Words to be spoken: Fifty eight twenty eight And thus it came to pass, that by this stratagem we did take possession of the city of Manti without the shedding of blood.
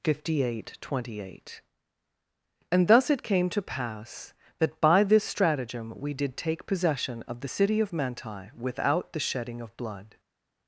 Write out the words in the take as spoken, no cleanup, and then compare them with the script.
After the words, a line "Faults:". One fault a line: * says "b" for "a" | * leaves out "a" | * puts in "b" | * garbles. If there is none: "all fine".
Fifty eight twenty eight And thus it came to pass, that by this stratagem we did take possession of the city of Manti without the shedding of blood.
Faults:
all fine